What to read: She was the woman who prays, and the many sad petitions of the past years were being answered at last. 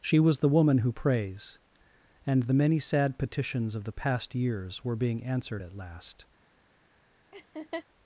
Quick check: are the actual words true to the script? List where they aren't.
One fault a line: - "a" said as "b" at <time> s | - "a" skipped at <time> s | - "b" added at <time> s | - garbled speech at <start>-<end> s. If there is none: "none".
none